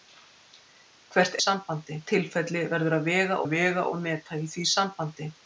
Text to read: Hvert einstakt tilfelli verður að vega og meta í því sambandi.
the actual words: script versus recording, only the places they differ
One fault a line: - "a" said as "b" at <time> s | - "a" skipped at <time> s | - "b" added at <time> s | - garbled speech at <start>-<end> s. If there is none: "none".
- "einstakt" said as "sambandi" at 1.4 s
- "að vega" added at 3.4 s